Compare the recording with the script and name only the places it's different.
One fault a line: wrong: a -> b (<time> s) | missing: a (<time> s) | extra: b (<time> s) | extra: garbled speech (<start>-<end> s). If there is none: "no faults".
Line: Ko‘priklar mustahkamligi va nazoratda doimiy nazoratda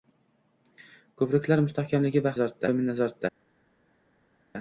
no faults